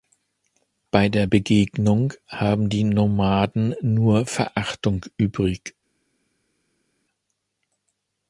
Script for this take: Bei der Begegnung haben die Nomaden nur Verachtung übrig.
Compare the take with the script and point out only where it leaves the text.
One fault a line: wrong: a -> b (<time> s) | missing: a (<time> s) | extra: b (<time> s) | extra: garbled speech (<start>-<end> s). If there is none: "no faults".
no faults